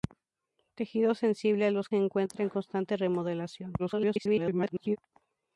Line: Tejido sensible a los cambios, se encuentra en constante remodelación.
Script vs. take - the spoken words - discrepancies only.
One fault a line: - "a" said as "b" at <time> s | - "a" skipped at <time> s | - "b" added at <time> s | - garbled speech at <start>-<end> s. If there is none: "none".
- "cambios" skipped at 1.9 s
- garbled speech at 3.8-5.0 s